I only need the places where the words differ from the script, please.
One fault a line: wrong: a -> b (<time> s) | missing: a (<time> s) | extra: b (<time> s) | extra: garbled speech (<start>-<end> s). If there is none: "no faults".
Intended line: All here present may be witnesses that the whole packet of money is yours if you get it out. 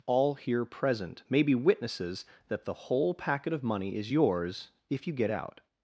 missing: it (5.3 s)